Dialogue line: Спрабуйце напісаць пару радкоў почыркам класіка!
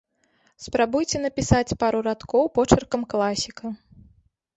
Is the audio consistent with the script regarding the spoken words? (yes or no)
yes